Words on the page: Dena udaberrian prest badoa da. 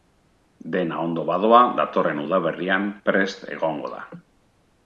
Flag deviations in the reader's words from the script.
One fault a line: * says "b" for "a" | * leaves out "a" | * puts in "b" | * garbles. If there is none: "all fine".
* puts in "ondo badoa datorren"
* says "egongo" for "badoa"